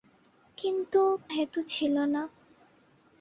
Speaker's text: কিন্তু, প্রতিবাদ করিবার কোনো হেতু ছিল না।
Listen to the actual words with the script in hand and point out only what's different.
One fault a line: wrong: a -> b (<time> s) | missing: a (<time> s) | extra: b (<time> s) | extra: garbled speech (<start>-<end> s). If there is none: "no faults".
missing: প্রতিবাদ করিবার কোনো (1.0 s)